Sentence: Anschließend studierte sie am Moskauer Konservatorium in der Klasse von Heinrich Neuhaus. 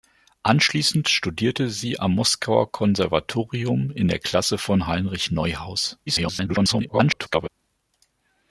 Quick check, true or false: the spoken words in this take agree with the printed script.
false